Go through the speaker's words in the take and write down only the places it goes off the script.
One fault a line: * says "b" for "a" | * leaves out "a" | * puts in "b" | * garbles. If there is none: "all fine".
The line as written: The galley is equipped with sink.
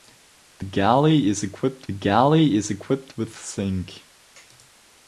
* puts in "galley is equipped"